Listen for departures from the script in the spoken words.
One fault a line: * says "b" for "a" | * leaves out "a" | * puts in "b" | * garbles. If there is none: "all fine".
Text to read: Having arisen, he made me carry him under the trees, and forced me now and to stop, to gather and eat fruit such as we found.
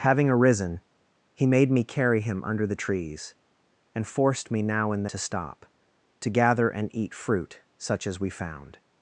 all fine